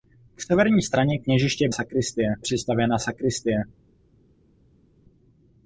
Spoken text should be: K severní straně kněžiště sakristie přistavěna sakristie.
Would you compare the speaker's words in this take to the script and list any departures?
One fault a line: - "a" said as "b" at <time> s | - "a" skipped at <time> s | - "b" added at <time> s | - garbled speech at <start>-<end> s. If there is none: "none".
none